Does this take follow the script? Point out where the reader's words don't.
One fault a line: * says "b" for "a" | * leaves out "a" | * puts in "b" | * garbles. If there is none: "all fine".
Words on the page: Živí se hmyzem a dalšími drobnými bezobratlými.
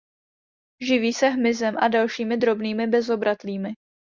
all fine